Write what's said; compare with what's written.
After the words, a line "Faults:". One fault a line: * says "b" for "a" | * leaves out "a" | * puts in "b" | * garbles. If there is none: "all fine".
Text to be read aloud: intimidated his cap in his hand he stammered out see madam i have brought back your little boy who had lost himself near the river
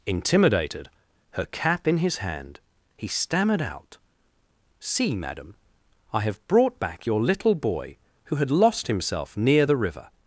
intimidated her cap in his hand he stammered out see madam i have brought back your little boy who had lost himself near the river
Faults:
* says "her" for "his"